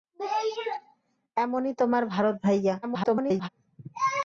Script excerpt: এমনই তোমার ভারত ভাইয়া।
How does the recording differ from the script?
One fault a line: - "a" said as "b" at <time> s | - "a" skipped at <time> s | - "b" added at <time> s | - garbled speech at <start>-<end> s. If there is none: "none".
- garbled speech at 2.8-3.5 s